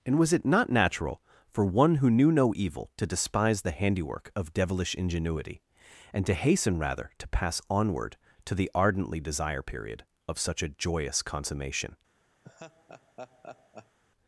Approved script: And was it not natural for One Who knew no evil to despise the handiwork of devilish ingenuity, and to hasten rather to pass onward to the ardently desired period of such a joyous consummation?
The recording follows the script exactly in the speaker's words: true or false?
false